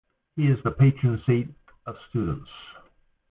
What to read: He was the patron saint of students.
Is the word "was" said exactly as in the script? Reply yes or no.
no